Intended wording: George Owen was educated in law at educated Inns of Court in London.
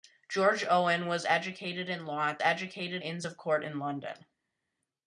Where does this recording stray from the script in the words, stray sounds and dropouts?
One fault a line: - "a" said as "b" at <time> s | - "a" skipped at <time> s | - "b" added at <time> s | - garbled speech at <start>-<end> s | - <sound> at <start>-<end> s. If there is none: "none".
none